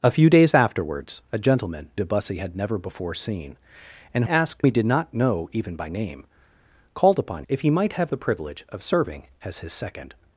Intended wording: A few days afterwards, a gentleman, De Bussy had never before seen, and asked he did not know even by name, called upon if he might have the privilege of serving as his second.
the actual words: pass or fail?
pass